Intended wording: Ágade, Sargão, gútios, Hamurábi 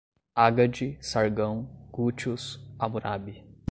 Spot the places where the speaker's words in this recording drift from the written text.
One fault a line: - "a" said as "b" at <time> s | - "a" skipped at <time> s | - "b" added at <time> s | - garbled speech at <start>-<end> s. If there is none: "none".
none